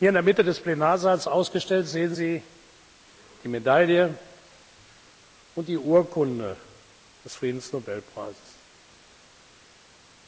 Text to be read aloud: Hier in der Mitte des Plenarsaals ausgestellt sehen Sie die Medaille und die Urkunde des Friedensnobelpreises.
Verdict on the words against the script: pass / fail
pass